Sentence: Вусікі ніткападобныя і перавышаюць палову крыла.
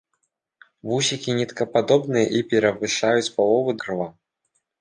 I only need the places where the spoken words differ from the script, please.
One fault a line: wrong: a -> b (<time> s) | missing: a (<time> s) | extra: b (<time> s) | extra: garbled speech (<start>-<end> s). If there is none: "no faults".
no faults